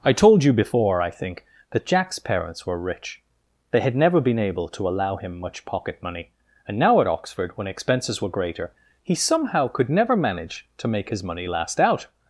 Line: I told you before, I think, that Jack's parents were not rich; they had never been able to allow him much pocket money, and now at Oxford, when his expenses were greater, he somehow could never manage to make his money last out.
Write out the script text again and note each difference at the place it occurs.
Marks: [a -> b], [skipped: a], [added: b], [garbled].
I told you before, I think, that Jack's parents were [skipped: not] rich; they had never been able to allow him much pocket money, and now at Oxford, when [skipped: his] expenses were greater, he somehow could never manage to make his money last out.